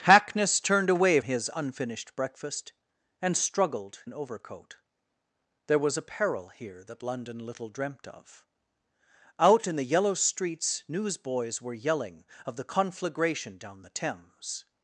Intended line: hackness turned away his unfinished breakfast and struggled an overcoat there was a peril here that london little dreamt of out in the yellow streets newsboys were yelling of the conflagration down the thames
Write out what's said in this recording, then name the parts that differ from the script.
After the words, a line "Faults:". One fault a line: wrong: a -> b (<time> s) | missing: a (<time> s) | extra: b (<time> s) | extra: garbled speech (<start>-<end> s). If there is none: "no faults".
hackness turned away his unfinished breakfast and struggled an overcoat there was a peril here that london little dreamt of out in the yellow streets newsboys were yelling of the conflagration down the thames
Faults:
no faults